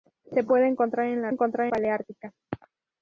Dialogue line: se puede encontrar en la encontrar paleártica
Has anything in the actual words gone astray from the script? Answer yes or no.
no